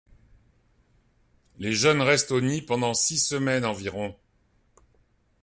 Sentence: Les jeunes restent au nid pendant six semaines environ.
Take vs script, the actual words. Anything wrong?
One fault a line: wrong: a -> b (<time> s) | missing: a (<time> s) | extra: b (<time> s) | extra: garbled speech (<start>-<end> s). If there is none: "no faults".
no faults